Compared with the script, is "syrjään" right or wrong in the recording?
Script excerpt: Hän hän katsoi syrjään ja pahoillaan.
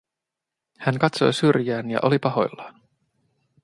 right